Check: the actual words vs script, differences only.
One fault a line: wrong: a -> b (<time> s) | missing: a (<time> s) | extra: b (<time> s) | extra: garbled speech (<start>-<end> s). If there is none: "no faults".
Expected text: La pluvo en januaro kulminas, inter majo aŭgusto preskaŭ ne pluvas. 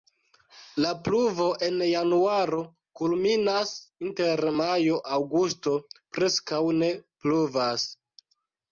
no faults